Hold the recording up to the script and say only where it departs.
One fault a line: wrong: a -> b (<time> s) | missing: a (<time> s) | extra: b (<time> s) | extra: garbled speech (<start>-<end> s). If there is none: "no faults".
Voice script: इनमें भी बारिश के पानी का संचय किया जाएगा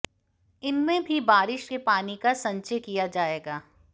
no faults